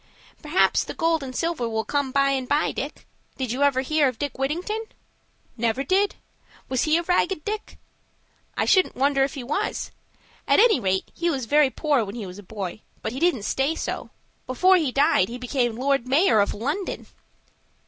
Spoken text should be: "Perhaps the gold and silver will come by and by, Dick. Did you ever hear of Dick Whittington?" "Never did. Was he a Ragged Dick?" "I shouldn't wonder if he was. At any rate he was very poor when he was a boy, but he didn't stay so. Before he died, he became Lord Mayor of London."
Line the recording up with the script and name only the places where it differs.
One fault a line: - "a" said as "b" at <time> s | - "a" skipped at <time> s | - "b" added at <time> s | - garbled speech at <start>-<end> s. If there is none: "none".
none